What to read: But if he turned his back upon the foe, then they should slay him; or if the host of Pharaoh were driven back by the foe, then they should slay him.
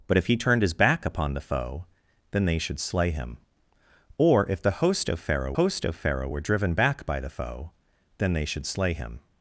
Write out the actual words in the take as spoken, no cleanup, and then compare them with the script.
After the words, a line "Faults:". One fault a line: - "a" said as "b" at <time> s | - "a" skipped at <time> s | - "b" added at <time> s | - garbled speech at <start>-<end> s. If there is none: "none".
But if he turned his back upon the foe, then they should slay him; or if the host of Pharaoh host of Pharaoh were driven back by the foe, then they should slay him.
Faults:
- "host of Pharaoh" added at 5.5 s